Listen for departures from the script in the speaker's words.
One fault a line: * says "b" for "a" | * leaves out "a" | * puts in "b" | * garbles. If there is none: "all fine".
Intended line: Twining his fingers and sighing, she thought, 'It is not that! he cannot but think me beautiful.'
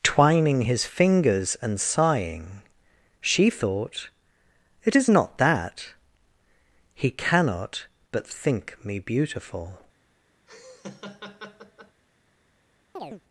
all fine